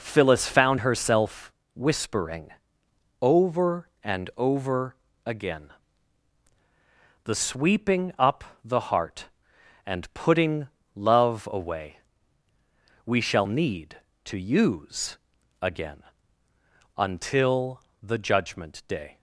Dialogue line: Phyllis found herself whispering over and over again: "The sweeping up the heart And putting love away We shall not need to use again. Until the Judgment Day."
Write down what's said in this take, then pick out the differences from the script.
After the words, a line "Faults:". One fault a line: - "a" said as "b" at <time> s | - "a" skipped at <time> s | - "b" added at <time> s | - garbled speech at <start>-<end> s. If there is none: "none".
Phyllis found herself whispering over and over again: "The sweeping up the heart And putting love away We shall need to use again. Until the Judgment Day."
Faults:
- "not" skipped at 13.5 s